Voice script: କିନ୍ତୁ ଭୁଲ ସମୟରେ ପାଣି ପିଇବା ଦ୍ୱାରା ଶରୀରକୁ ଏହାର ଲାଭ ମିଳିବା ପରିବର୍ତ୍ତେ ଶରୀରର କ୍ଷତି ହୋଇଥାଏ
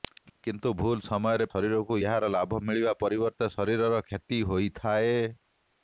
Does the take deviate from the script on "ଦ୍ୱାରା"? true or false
true